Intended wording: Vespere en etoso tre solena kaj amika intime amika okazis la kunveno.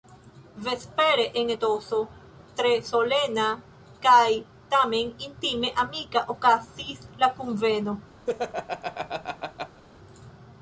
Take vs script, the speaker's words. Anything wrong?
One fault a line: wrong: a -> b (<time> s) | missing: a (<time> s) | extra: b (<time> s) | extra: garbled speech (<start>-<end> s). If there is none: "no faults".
wrong: amika -> tamen (4.8 s)